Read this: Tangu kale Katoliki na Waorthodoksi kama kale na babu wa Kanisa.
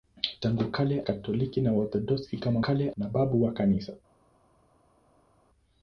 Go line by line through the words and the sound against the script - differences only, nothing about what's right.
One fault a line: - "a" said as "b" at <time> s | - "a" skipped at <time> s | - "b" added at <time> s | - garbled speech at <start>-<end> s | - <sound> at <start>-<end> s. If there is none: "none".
none